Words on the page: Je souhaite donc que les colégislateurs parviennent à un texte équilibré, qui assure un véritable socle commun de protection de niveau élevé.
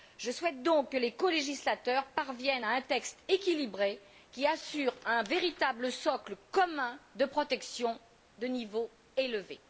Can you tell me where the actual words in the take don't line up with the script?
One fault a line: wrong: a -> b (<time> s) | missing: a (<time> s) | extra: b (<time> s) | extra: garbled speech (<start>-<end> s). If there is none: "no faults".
no faults